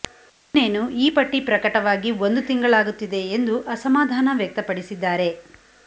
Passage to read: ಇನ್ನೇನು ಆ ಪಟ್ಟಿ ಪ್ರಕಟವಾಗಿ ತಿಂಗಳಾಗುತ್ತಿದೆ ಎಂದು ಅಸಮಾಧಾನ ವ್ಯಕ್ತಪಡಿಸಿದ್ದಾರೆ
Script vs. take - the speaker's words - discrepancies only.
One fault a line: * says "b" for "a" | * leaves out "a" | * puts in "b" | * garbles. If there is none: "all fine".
* says "ಈ" for "ಆ"
* puts in "ಒಂದು"